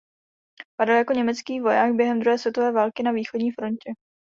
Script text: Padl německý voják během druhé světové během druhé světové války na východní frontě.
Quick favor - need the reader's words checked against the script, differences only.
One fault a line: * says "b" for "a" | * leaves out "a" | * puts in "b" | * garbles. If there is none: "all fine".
* puts in "jako"
* leaves out "během druhé světové"